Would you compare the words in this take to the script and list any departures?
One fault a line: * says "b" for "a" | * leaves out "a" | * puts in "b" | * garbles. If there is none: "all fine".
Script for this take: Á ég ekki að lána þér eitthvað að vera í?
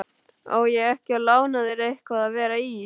all fine